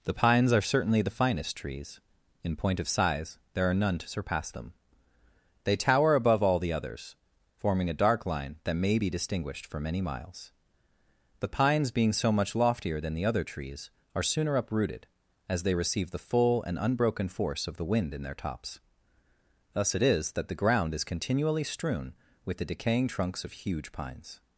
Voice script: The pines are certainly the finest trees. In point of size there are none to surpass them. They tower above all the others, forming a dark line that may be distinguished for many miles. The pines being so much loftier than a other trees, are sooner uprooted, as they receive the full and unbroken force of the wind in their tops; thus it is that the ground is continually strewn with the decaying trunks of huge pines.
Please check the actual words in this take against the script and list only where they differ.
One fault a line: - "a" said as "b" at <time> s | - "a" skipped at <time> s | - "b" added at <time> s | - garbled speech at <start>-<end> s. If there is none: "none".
- "a" said as "the" at 13.1 s